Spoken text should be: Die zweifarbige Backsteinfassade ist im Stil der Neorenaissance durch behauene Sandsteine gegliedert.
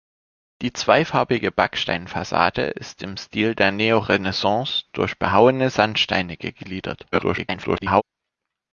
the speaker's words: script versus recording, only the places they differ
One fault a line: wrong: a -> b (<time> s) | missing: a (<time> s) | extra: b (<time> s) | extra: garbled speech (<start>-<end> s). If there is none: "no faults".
extra: garbled speech (7.1-8.0 s)